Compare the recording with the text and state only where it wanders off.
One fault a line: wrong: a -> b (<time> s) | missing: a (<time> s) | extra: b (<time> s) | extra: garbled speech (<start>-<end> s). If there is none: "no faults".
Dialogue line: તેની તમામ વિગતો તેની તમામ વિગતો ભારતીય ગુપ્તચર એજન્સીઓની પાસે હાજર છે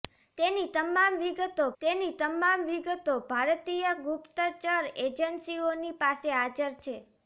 no faults